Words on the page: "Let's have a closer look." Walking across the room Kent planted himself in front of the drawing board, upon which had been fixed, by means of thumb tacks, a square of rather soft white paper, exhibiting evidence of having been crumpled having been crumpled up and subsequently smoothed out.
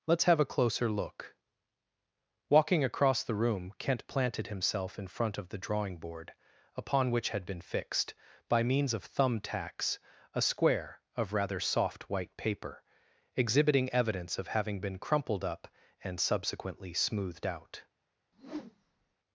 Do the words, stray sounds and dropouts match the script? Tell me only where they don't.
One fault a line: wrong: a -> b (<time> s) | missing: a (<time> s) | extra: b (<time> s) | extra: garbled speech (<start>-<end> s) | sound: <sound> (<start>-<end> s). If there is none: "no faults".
missing: having been crumpled (15.4 s)
sound: whoosh (18.3-19.2 s)